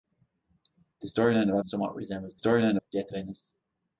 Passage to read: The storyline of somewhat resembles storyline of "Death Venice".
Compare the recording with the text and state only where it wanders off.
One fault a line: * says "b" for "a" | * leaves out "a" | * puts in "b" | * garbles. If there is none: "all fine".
all fine